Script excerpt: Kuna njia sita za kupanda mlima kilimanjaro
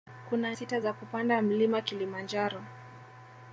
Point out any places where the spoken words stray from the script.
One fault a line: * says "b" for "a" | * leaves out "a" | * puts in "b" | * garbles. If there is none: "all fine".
* leaves out "njia"